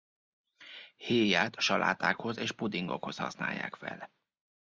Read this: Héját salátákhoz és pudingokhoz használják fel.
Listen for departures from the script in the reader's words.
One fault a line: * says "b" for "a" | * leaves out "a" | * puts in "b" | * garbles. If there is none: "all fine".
all fine